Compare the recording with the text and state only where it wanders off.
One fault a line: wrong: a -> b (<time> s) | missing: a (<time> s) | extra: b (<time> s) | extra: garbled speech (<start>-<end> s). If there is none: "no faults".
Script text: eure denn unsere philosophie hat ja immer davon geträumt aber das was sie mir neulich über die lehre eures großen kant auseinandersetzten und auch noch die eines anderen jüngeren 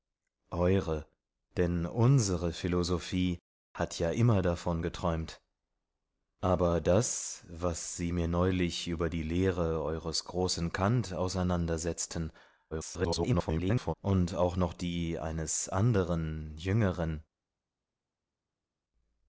extra: garbled speech (12.7-13.9 s)